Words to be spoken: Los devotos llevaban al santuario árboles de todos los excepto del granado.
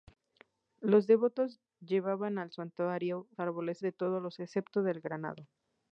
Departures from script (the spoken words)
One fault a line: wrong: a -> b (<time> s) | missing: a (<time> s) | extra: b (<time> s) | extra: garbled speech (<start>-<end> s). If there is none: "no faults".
no faults